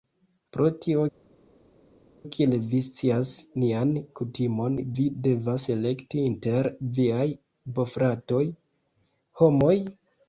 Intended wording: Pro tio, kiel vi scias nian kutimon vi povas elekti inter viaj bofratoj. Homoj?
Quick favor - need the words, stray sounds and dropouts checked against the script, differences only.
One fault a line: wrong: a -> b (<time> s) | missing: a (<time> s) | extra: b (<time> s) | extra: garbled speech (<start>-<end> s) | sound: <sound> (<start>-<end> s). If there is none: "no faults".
wrong: povas -> devas (5.3 s)